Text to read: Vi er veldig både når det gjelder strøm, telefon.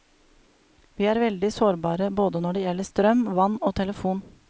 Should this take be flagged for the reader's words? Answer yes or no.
yes